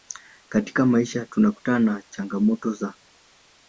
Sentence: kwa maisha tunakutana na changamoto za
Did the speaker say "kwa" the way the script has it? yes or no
no